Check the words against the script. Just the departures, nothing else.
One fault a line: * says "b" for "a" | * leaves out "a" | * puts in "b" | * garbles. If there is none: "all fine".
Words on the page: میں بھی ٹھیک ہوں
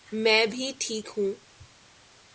all fine